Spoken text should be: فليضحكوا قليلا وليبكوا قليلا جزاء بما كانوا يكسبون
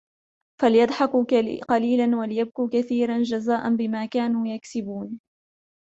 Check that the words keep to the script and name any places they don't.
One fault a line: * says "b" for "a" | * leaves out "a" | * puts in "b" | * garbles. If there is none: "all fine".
* says "كثيرا" for "قليلا"